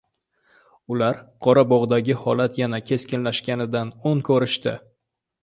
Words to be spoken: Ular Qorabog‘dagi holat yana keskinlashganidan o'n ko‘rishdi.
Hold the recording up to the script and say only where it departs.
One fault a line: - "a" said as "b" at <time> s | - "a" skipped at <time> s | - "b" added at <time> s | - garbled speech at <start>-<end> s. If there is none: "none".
none